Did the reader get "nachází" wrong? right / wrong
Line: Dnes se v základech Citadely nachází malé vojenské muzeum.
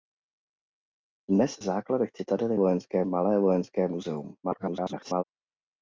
wrong